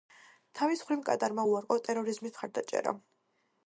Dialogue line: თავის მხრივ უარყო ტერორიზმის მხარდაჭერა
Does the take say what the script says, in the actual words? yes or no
no